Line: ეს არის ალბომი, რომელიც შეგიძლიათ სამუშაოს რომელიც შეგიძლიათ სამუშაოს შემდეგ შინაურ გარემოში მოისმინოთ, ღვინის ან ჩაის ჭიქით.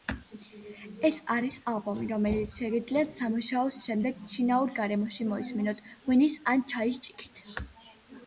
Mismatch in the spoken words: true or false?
true